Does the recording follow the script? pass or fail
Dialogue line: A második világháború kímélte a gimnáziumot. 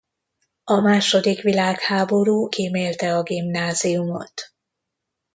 pass